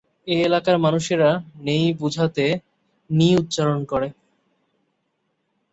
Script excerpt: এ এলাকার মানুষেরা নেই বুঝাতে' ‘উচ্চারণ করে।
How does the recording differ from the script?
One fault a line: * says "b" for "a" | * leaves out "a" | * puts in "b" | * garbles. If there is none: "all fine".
* puts in "নি"